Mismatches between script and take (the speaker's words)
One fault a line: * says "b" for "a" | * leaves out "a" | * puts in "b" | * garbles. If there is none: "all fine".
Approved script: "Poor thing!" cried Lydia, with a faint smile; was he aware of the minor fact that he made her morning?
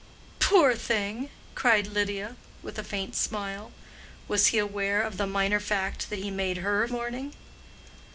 all fine